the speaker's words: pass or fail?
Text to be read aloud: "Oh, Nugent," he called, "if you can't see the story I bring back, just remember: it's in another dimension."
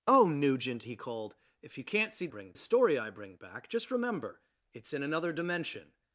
fail